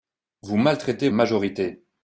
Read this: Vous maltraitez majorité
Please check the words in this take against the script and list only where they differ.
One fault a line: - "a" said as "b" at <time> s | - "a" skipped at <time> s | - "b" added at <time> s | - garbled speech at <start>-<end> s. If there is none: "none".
none